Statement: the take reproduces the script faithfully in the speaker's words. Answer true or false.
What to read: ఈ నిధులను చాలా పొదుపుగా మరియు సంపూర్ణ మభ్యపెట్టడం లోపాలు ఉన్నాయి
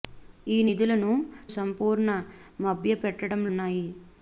false